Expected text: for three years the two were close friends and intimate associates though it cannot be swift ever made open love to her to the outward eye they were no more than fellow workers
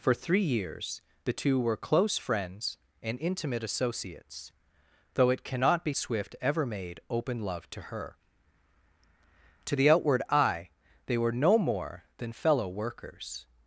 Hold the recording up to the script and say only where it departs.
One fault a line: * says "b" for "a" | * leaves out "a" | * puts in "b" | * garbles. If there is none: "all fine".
all fine